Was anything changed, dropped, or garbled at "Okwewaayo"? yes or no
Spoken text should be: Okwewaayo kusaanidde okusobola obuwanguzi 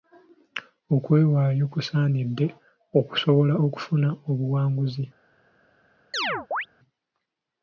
no